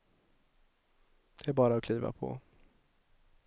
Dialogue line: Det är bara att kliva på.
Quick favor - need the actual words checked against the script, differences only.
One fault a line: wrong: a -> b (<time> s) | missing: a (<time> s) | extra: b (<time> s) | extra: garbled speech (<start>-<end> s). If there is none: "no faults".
no faults